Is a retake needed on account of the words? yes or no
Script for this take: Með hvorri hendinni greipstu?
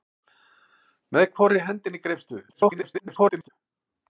yes